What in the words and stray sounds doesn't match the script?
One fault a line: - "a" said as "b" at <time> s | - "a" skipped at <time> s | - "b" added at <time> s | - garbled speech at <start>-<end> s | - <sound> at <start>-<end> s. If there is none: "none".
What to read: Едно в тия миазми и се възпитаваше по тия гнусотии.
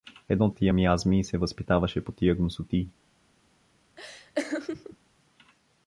- laugh at 4.0-5.0 s